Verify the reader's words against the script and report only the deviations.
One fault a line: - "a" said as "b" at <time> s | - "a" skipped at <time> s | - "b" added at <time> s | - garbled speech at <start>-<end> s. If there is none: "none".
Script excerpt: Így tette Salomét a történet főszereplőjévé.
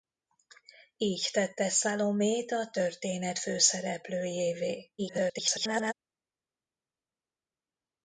- garbled speech at 5.0-5.9 s